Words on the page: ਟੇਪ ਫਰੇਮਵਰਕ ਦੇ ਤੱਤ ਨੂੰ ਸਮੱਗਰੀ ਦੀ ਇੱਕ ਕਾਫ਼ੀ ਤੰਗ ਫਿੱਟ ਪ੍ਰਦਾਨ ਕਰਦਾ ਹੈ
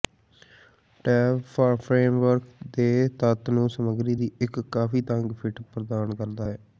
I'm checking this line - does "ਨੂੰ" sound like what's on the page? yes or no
yes